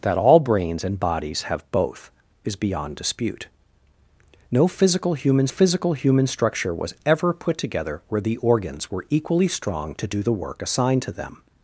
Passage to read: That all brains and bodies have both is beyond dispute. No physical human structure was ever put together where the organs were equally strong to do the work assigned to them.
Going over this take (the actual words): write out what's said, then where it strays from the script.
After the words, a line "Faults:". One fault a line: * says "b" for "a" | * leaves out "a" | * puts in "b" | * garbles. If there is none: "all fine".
That all brains and bodies have both is beyond dispute. No physical human physical human structure was ever put together where the organs were equally strong to do the work assigned to them.
Faults:
* puts in "physical human"